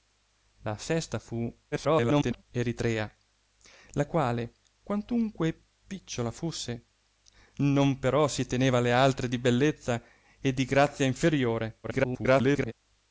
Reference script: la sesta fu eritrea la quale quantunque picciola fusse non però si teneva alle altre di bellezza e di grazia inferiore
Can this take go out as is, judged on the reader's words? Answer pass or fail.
fail